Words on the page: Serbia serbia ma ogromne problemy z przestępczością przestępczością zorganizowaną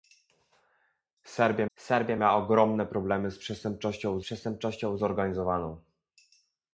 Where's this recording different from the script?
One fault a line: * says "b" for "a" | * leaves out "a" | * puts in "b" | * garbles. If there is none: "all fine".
all fine